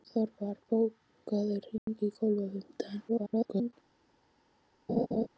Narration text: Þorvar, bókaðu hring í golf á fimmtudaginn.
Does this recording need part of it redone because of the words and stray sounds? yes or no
yes